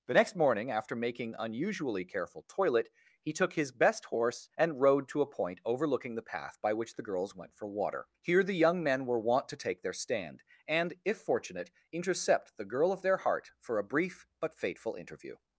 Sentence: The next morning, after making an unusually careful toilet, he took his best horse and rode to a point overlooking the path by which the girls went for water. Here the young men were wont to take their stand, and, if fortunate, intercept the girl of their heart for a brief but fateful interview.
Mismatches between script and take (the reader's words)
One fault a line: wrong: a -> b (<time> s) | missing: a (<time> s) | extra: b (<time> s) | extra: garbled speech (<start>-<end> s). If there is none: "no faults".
missing: an (1.4 s)